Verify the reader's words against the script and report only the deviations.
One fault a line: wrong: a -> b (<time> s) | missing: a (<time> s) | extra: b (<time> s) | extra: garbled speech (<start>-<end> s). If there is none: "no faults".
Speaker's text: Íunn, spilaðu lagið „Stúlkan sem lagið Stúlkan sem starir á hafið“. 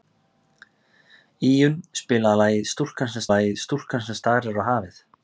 no faults